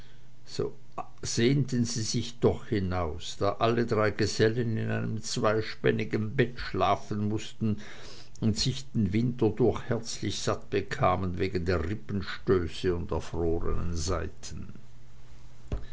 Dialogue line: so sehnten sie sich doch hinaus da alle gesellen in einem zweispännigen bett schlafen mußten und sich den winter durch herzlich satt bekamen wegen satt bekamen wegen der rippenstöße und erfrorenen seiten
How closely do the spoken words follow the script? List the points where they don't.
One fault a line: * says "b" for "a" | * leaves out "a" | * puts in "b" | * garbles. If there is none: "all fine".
* puts in "drei"
* leaves out "satt bekamen wegen"